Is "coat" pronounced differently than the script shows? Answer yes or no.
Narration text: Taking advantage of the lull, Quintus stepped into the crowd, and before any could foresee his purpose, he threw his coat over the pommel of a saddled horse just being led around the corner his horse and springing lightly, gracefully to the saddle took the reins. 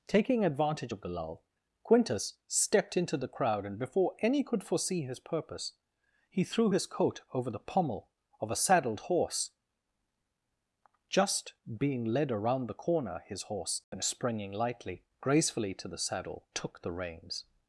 no